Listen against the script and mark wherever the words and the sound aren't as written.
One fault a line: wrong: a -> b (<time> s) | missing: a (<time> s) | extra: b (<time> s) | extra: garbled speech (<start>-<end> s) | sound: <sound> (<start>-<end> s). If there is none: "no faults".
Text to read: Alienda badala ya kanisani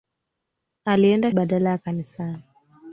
no faults